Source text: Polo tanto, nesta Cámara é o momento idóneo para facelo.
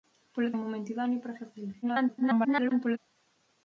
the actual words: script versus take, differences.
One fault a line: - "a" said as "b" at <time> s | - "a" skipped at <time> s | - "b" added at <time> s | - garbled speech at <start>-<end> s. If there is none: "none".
- "tanto nesta Cámara" skipped at 0.5 s
- garbled speech at 1.8-3.0 s